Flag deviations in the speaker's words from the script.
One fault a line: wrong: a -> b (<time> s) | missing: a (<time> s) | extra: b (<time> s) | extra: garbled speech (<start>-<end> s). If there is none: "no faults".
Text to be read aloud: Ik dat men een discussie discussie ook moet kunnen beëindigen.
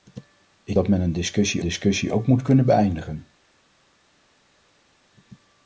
no faults